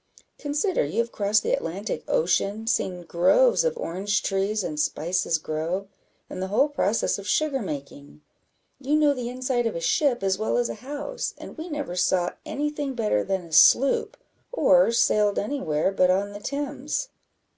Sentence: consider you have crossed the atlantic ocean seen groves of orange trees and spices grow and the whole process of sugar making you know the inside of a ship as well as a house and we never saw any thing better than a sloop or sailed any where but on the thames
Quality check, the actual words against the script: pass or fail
pass